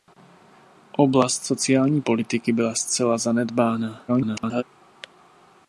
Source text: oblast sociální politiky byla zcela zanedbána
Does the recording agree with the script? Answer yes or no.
no